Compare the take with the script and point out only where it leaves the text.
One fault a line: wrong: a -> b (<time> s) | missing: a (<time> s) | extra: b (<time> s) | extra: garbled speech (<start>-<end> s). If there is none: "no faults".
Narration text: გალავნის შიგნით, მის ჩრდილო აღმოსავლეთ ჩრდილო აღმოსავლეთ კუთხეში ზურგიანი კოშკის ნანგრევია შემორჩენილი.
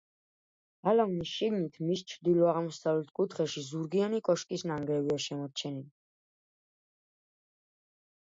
missing: ჩრდილო აღმოსავლეთ (3.1 s)